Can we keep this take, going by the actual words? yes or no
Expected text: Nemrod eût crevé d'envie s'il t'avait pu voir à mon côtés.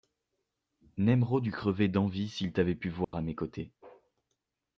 no